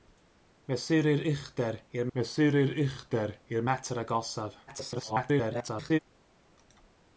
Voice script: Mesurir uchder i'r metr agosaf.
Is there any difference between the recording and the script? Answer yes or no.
yes